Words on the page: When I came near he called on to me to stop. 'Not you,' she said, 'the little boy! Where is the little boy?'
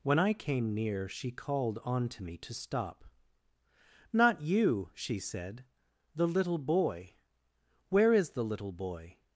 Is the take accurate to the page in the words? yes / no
no